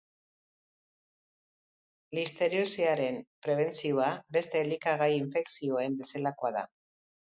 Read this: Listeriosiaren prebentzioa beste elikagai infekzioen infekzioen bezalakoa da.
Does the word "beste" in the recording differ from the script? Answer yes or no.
no